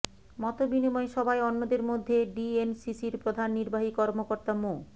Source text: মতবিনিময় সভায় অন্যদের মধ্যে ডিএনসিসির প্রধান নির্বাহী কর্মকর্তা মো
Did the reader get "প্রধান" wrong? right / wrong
right